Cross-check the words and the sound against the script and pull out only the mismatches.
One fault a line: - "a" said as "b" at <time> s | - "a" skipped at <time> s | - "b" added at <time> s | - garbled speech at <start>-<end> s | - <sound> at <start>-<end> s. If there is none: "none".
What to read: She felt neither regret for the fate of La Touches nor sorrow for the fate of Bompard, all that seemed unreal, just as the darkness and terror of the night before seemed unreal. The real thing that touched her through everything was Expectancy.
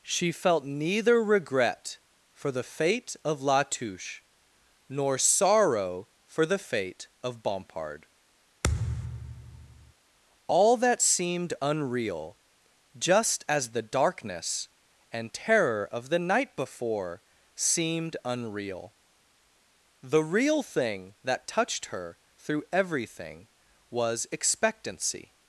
- "Touches" said as "Touche" at 3.6 s
- thud at 8.6-9.9 s